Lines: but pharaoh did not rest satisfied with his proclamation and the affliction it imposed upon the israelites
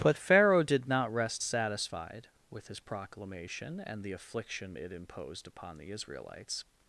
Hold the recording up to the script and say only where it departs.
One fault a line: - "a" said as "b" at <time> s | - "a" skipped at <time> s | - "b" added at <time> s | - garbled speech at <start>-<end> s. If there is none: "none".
none